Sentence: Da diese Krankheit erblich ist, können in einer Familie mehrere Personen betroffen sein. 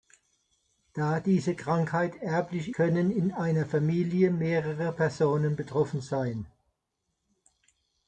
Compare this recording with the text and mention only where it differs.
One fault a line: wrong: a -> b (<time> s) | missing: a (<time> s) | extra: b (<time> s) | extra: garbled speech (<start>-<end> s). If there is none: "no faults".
missing: ist (2.7 s)